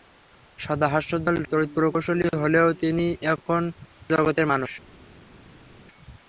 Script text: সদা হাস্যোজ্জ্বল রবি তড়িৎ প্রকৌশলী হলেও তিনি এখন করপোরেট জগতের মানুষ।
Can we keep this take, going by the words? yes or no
no